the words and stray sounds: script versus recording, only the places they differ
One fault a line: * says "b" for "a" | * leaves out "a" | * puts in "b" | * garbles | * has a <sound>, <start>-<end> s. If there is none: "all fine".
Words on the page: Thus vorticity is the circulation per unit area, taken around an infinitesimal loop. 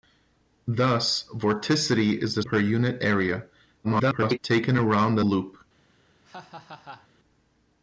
* leaves out "circulation"
* garbles
* leaves out "an infinitesimal"
* has a laugh, 6.2-7.1 s